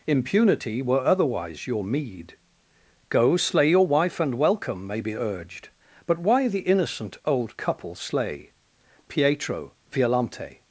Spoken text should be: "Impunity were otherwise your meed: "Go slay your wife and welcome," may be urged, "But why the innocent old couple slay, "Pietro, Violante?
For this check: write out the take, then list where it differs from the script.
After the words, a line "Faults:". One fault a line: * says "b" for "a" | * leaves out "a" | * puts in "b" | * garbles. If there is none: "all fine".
"Impunity were otherwise your meed: "Go slay your wife and welcome," may be urged, "But why the innocent old couple slay, "Pietro, Violante?
Faults:
all fine